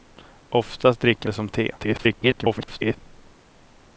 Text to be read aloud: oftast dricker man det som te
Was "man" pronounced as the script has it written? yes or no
no